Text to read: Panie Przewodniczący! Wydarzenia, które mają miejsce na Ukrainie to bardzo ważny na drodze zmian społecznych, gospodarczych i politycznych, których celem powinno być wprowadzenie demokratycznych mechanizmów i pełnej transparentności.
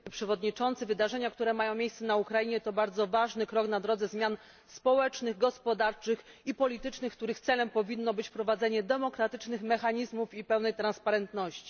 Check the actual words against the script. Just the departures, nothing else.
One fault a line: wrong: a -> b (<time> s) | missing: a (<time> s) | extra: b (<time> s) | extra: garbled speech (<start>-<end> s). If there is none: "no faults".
extra: krok (3.5 s)